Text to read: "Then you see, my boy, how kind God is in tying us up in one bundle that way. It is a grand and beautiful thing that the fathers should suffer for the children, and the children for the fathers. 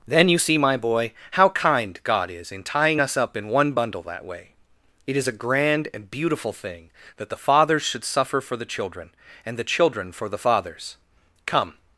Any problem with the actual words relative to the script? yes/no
yes